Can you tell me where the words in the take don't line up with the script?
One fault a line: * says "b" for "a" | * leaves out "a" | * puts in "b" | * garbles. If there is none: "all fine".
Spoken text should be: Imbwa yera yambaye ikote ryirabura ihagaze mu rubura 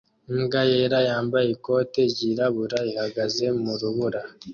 all fine